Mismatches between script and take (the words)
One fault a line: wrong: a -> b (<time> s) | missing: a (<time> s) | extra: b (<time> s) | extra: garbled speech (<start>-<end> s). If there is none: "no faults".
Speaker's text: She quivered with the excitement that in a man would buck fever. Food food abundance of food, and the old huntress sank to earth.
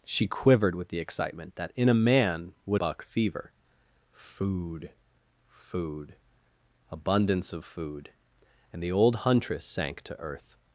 no faults